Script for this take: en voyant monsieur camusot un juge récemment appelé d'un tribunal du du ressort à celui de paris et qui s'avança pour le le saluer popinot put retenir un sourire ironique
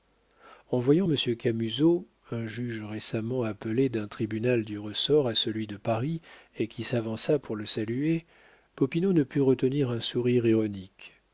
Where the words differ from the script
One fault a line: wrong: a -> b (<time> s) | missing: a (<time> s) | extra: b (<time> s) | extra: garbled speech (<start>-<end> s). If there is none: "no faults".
missing: du (4.8 s)
missing: le (7.7 s)
extra: ne (9.1 s)